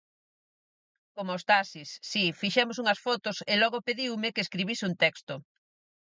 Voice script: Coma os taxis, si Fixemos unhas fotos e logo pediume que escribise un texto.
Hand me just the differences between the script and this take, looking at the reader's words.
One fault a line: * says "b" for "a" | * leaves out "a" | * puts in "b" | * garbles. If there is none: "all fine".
all fine